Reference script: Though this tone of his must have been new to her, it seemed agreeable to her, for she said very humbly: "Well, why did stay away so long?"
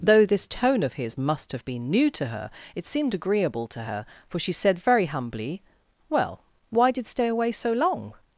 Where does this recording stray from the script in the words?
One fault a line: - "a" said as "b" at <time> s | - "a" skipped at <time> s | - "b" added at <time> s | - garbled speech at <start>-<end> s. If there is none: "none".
none